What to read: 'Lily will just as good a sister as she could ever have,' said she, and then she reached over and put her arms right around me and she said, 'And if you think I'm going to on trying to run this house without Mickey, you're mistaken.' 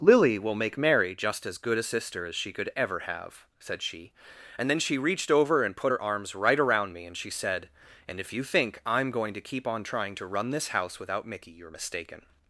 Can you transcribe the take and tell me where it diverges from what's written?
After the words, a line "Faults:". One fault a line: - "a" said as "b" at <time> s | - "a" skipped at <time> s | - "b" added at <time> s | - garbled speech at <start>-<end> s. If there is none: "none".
'Lily will make Mary just as good a sister as she could ever have,' said she, and then she reached over and put her arms right around me and she said, 'And if you think I'm going to keep on trying to run this house without Mickey, you're mistaken.'
Faults:
- "make Mary" added at 0.6 s
- "keep" added at 9.4 s